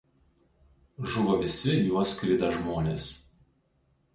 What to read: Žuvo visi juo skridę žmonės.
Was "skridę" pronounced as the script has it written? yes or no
yes